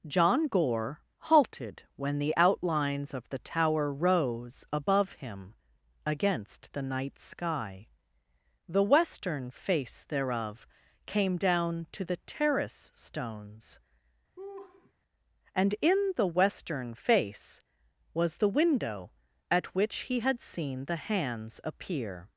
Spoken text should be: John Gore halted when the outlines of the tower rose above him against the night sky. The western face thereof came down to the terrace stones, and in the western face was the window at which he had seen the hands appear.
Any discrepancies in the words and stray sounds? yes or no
yes